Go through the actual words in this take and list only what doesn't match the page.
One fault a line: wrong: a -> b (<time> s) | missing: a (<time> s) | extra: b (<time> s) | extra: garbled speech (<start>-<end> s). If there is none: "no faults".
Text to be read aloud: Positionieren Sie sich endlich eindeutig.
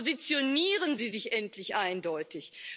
no faults